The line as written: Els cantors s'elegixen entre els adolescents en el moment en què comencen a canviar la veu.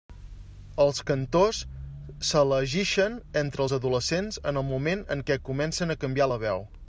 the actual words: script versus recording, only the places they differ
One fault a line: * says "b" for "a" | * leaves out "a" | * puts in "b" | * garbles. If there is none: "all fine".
all fine